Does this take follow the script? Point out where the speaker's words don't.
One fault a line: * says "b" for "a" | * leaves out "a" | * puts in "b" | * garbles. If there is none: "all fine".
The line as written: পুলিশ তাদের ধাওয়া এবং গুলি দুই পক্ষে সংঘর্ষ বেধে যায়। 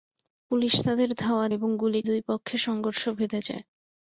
all fine